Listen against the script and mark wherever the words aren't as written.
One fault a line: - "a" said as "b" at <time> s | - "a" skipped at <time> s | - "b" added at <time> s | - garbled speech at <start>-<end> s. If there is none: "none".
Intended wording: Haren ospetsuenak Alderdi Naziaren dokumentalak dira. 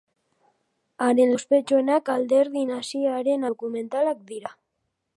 none